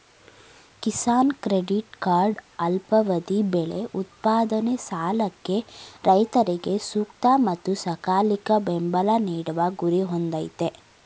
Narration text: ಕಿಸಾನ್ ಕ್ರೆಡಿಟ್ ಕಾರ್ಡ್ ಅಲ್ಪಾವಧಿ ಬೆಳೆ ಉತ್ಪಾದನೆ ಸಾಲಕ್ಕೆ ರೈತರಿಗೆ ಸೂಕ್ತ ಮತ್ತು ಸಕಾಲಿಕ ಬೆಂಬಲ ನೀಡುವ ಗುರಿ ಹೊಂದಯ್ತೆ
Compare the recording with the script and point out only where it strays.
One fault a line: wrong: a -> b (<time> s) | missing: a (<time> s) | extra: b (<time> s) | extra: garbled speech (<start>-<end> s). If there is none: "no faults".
no faults